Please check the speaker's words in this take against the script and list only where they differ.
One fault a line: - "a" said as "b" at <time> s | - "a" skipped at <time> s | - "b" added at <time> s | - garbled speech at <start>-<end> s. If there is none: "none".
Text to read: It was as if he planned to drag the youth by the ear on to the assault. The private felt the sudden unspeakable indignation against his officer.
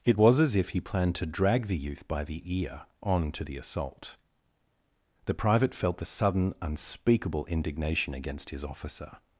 none